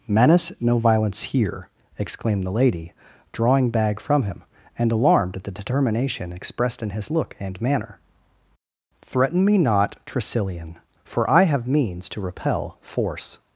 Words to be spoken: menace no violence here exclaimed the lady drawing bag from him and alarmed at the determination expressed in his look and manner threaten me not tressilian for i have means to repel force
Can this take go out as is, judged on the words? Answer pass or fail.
pass